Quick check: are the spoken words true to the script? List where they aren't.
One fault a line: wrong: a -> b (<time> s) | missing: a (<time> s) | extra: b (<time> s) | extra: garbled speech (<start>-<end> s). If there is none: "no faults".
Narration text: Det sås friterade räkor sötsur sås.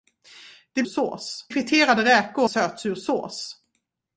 no faults